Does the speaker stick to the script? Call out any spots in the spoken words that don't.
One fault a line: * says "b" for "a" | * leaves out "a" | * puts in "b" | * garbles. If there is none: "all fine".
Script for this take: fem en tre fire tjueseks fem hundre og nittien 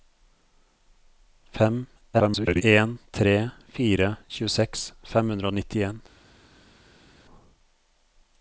* garbles